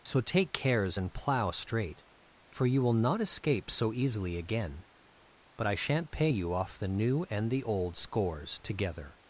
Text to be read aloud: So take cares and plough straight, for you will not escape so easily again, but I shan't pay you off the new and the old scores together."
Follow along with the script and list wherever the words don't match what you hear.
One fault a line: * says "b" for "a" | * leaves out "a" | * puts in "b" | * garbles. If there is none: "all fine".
all fine